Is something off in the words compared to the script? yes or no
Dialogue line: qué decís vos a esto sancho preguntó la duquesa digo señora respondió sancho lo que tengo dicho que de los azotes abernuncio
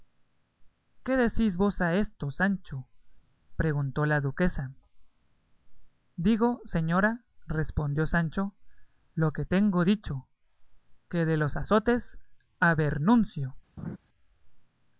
no